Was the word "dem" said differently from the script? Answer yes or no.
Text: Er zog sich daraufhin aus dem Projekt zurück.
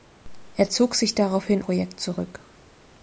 yes